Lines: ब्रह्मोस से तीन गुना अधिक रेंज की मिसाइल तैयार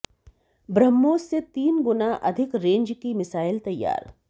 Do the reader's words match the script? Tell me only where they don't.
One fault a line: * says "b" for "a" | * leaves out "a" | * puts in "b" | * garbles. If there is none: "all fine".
all fine